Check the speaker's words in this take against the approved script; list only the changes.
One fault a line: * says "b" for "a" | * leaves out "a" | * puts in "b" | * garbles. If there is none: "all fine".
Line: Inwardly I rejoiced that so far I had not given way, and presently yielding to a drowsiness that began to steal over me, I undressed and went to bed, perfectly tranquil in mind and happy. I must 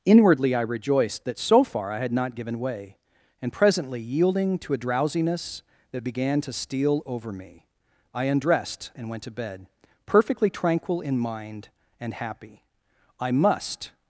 all fine